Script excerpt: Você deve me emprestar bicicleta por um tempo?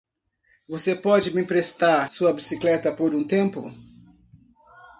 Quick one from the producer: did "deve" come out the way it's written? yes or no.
no